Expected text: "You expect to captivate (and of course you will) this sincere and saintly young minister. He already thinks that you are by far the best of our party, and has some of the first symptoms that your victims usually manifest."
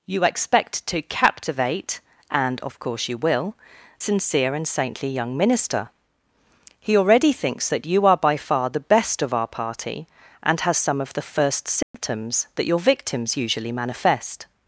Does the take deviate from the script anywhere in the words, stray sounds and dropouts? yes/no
yes